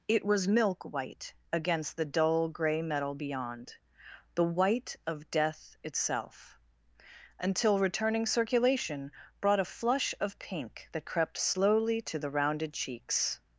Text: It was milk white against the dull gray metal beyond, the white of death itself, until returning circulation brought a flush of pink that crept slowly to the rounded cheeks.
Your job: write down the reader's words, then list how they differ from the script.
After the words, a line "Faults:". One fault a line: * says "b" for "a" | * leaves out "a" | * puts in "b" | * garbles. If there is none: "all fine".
It was milk white against the dull gray metal beyond, the white of death itself, until returning circulation brought a flush of pink that crept slowly to the rounded cheeks.
Faults:
all fine